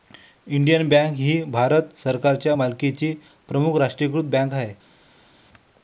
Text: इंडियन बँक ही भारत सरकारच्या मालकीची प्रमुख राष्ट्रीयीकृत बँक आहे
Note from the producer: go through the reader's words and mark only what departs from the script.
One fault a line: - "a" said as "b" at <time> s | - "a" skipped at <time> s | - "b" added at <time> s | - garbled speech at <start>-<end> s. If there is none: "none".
none